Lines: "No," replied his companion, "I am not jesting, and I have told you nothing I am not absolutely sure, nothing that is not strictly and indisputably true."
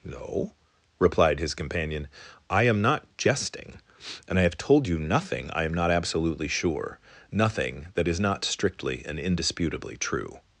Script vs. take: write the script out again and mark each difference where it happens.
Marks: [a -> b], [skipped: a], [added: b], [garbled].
"No," replied his companion, "I am not jesting, and I have told you nothing I am not absolutely sure, nothing that is not strictly and indisputably true."